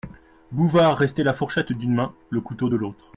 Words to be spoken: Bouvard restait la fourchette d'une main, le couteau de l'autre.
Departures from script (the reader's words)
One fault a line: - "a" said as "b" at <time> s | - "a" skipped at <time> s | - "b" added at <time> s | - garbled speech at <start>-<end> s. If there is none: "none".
none